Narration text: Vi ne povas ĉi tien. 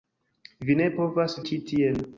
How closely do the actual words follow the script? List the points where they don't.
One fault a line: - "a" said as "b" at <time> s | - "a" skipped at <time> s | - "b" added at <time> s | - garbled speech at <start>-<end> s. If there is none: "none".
none